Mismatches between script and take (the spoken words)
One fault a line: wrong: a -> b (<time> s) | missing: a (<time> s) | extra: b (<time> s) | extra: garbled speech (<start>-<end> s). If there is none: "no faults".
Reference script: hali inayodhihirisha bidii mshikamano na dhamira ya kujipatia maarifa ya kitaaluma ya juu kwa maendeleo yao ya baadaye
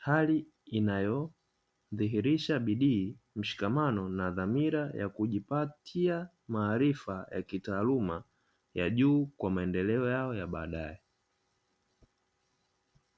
no faults